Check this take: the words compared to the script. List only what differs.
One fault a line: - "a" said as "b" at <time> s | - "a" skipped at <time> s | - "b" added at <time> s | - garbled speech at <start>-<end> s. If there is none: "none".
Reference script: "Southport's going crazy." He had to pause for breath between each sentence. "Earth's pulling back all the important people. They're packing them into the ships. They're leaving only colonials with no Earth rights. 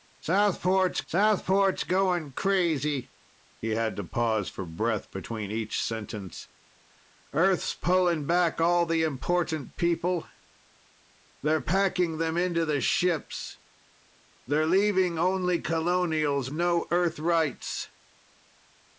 - "southport's" added at 1.1 s
- "with" skipped at 16.5 s